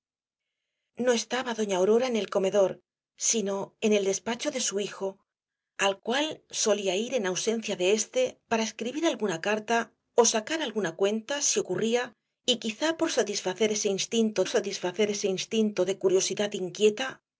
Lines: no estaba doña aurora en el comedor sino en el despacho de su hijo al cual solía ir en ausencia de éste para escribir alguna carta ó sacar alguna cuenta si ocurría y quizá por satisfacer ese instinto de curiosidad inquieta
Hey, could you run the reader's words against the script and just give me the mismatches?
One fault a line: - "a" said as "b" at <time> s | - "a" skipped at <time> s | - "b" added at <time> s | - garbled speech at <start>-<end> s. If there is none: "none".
- "satisfacer ese instinto" added at 14.5 s